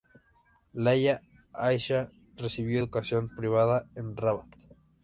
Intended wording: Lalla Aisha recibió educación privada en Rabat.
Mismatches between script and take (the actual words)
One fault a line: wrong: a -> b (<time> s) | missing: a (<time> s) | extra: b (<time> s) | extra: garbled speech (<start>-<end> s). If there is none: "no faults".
no faults